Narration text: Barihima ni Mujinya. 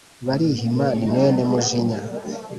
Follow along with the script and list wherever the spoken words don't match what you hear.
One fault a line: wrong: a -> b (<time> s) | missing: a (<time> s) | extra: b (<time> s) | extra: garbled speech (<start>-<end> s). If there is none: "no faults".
extra: mwene (1.1 s)